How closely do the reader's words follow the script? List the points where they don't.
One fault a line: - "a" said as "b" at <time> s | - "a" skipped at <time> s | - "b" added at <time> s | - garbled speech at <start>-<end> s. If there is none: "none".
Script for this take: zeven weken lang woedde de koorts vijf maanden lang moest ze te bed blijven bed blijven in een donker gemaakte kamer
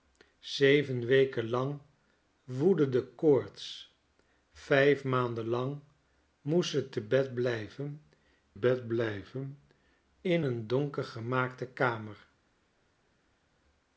none